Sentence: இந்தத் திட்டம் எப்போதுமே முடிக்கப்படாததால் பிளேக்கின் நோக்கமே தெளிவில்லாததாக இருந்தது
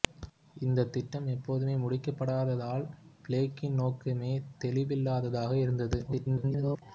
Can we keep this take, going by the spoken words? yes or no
no